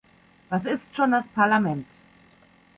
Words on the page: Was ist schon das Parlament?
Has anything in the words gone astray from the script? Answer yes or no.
no